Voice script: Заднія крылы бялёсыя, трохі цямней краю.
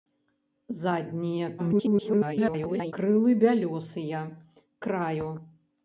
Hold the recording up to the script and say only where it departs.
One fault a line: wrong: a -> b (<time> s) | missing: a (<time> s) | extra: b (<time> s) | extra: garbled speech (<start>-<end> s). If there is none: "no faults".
extra: garbled speech (1.6-2.9 s)
missing: трохі цямней (4.2 s)